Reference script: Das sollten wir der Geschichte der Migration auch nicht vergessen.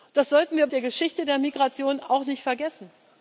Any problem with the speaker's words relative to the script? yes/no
no